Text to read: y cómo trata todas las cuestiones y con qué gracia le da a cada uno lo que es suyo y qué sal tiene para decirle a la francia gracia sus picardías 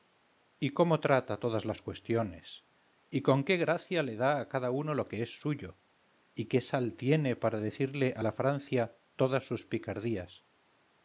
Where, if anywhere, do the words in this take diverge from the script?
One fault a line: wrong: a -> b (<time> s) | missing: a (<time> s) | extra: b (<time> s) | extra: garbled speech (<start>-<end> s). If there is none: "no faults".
wrong: gracia -> todas (9.2 s)